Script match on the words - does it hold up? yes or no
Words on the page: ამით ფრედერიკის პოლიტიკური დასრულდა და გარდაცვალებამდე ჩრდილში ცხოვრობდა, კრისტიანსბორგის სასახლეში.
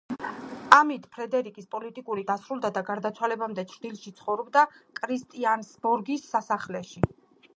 yes